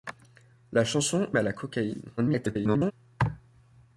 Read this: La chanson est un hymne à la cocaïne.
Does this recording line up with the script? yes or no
no